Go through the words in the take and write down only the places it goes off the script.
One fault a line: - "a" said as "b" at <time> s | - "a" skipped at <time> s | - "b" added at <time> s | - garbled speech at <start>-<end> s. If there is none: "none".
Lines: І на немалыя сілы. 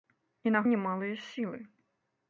none